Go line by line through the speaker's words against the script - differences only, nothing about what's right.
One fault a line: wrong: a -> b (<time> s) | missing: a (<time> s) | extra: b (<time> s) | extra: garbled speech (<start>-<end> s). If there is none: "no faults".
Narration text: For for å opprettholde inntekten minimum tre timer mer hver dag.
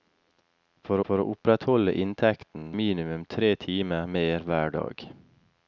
no faults